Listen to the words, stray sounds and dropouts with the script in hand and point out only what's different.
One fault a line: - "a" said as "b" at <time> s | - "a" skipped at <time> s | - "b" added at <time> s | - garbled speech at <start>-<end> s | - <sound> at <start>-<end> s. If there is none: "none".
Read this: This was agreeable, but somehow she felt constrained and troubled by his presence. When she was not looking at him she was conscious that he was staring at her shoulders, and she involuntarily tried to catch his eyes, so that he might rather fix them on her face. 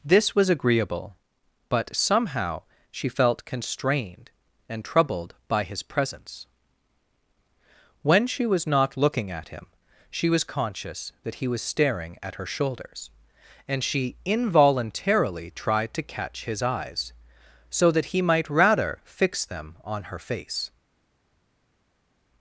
none